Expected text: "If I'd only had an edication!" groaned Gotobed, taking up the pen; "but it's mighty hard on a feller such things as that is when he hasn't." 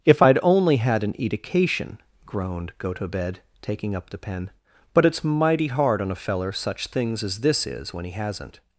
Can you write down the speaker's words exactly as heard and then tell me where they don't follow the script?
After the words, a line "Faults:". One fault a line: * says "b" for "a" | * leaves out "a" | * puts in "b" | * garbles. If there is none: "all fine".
"If I'd only had an edication!" groaned Gotobed, taking up the pen; "but it's mighty hard on a feller such things as this is when he hasn't."
Faults:
* says "this" for "that"